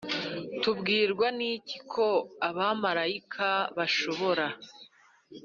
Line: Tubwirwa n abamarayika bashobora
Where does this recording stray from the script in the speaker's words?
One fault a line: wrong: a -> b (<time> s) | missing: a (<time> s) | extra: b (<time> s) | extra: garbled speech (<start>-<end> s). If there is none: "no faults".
extra: iki ko (1.5 s)